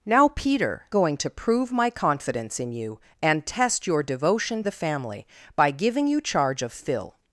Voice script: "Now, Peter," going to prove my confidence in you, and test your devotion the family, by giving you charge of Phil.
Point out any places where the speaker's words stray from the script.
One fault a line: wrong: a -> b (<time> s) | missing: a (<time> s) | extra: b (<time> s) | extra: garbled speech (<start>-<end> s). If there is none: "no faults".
no faults